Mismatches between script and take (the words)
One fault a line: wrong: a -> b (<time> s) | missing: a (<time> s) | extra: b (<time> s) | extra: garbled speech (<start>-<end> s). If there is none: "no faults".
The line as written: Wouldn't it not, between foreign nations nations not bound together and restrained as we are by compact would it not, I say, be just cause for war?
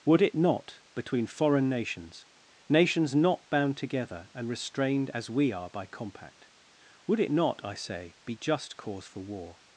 wrong: Wouldn't -> Would (0.1 s)